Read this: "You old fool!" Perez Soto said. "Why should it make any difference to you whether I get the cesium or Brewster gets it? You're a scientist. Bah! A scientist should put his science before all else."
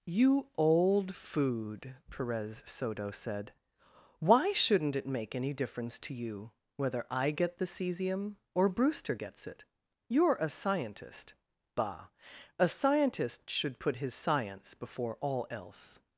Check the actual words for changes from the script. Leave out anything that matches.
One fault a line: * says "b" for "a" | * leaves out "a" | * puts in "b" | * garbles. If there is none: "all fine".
* says "food" for "fool"
* says "shouldn't" for "should"